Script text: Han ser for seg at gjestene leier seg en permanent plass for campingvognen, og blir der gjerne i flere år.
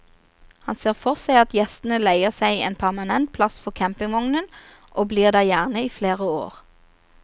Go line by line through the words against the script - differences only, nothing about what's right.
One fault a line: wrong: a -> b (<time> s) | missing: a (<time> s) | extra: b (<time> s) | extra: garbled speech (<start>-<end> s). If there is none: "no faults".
no faults